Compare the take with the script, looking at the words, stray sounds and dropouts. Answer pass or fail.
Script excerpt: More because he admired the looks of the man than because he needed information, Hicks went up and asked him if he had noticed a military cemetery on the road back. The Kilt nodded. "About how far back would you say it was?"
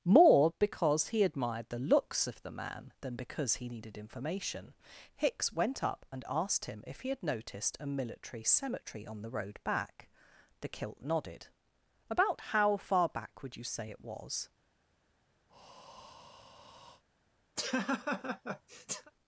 fail